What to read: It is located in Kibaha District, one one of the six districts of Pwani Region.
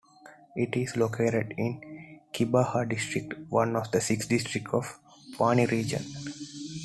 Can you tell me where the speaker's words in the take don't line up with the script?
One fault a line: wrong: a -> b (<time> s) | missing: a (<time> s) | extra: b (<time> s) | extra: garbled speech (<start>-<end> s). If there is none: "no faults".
missing: one (3.8 s)